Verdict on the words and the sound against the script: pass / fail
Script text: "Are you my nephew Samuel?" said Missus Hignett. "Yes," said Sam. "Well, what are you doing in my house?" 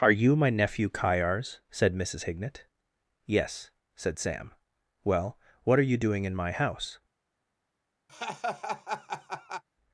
fail